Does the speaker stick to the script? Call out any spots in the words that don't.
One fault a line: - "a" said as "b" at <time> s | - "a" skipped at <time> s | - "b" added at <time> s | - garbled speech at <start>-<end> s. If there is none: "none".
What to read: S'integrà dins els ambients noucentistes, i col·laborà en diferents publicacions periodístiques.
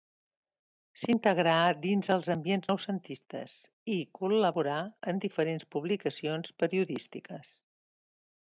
none